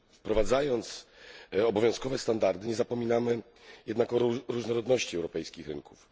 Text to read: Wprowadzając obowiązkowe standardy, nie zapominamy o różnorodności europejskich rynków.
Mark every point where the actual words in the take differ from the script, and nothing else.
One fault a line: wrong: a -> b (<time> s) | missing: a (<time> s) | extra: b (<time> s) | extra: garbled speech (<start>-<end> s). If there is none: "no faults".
extra: jednak (3.9 s)